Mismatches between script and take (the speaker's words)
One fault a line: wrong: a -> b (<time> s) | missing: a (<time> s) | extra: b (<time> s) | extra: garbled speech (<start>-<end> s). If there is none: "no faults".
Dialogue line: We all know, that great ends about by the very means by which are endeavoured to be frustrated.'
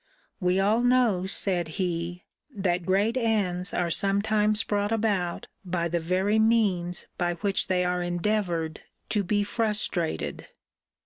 extra: said he (1.3 s)
extra: are sometimes brought (3.7 s)
extra: they (7.7 s)